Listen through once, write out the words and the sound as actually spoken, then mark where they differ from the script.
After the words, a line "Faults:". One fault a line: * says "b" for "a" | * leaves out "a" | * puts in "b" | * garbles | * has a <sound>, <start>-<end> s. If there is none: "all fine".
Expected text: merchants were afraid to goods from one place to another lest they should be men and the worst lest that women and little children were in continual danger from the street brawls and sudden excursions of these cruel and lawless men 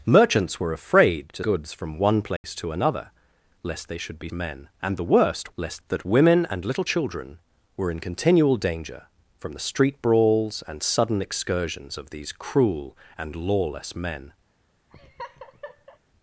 merchants were afraid to goods from one place to another lest they should be men and the worst lest that women and little children were in continual danger from the street brawls and sudden excursions of these cruel and lawless men
Faults:
* has a dropout, 2.4-2.4 s
* has a laugh, 14.9-16.0 s